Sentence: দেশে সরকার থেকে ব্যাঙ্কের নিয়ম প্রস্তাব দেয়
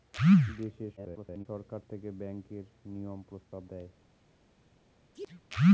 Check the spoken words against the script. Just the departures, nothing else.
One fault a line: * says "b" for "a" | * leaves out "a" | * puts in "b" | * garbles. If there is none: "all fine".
* garbles